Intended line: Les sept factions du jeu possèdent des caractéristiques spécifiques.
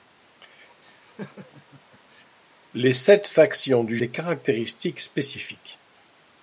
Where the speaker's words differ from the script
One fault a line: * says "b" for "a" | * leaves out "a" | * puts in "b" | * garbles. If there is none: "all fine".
* leaves out "jeu possèdent"